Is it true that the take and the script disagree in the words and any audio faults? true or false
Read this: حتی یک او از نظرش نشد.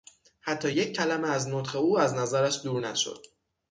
true